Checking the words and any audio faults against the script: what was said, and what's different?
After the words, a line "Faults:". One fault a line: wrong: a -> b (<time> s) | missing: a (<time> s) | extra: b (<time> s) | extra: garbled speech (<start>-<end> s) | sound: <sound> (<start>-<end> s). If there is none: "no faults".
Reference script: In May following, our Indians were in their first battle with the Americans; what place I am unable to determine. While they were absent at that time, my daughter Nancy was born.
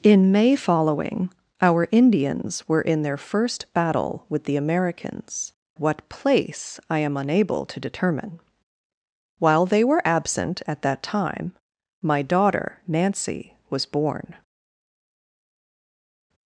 In May following, our Indians were in their first battle with the Americans; what place I am unable to determine. While they were absent at that time, my daughter Nancy was born.
Faults:
no faults